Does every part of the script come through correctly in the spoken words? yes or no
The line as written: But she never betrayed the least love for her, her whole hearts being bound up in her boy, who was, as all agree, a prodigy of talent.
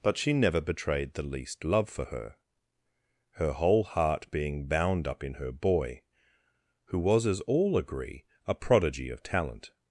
no